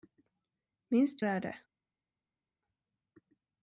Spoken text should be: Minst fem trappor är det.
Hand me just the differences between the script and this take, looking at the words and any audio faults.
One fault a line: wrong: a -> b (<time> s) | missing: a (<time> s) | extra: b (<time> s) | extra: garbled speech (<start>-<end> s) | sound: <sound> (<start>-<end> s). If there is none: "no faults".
missing: fem trappor (1.2 s)